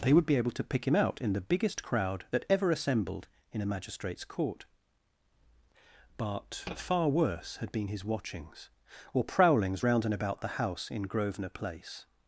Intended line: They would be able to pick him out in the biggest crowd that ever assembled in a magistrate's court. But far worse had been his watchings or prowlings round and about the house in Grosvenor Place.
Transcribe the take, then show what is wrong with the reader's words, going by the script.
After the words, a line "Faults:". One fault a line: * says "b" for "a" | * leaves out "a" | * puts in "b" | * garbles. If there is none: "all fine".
They would be able to pick him out in the biggest crowd that ever assembled in a magistrate's court. But far worse had been his watchings or prowlings round and about the house in Grosvenor Place.
Faults:
all fine